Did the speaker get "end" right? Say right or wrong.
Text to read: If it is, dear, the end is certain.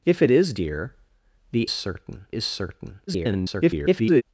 wrong